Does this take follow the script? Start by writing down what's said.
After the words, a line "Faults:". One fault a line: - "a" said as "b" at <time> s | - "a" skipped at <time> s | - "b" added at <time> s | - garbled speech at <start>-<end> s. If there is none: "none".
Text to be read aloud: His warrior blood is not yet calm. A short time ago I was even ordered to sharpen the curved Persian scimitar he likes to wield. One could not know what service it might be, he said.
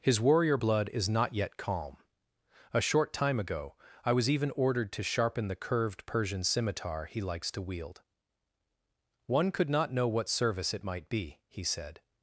His warrior blood is not yet calm. A short time ago I was even ordered to sharpen the curved Persian scimitar he likes to wield. One could not know what service it might be, he said.
Faults:
none